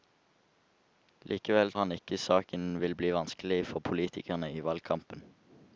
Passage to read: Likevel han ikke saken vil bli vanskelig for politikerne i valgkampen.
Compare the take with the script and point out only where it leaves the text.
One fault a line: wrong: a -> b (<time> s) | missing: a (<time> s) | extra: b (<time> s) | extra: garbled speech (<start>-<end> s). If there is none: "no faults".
no faults